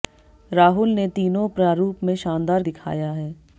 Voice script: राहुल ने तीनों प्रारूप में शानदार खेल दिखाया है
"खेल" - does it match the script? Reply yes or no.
no